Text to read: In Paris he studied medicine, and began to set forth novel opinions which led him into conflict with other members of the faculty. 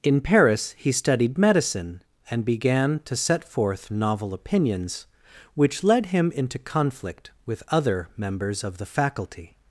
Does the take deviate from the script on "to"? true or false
false